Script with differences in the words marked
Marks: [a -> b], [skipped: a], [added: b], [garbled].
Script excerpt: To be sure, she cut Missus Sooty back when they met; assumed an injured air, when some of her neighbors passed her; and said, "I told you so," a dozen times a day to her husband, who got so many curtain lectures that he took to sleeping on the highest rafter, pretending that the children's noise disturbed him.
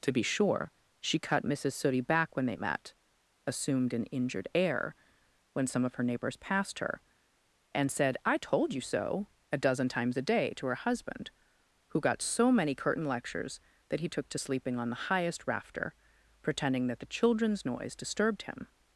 To be sure, she cut Missus Sooty back when they met; assumed an injured air, when some of her neighbors passed her; and said, "I told you so," a dozen times a day to her husband, who got so many curtain lectures that he took to sleeping on the highest rafter, pretending that the children's noise disturbed him.